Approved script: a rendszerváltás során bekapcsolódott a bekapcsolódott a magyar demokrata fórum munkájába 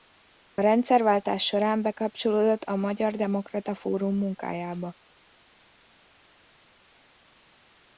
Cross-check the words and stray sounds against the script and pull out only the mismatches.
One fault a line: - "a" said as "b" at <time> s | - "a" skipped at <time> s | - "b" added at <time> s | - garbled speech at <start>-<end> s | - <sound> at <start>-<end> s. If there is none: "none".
- "bekapcsolódott a" skipped at 2.8 s